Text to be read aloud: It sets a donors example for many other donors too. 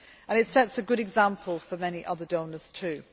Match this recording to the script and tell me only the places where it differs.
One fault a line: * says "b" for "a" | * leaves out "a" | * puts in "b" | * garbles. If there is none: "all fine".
* says "good" for "donors"